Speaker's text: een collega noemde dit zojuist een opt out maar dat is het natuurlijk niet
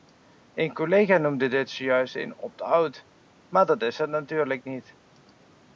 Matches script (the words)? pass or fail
pass